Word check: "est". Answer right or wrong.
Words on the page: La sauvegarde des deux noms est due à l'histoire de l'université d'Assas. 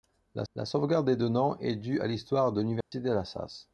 right